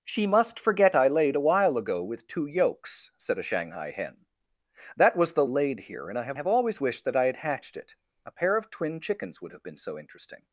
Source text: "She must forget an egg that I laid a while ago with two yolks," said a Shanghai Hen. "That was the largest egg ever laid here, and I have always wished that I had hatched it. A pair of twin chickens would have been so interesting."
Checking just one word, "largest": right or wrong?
wrong